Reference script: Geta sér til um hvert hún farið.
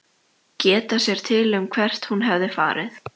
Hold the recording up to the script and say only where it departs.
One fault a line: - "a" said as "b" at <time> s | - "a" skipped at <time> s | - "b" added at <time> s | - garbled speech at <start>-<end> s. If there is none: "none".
- "hefði" added at 2.3 s